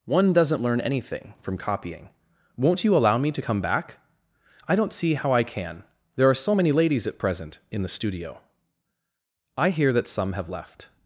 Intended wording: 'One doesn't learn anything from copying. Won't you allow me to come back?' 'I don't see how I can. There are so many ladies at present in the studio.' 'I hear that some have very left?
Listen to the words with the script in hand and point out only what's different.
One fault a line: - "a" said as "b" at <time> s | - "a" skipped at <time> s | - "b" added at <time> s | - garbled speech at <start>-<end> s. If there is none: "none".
- "very" skipped at 10.5 s